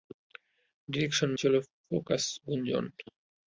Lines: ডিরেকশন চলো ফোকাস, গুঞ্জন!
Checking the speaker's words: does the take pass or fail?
pass